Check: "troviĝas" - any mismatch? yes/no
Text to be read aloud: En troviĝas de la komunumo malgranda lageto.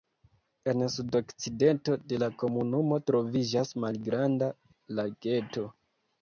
yes